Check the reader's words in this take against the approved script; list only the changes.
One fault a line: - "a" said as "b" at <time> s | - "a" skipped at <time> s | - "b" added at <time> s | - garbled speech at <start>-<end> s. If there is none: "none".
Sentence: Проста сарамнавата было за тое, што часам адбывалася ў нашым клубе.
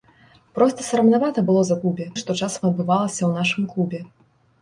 - "тое" said as "клубе" at 1.8 s